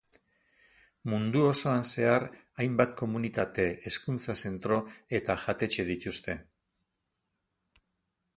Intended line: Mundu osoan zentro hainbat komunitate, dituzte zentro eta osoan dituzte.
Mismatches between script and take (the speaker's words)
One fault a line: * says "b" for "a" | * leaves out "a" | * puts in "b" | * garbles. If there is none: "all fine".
* says "zehar" for "zentro"
* says "hezkuntza" for "dituzte"
* says "jatetxe" for "osoan"